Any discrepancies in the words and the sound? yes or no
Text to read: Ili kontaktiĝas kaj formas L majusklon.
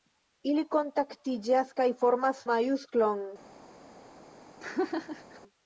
yes